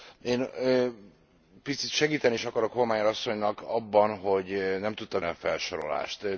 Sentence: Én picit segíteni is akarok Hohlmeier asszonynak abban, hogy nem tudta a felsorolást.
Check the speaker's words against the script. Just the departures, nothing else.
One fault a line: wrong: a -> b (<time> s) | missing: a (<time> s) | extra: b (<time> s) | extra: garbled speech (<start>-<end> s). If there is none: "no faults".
no faults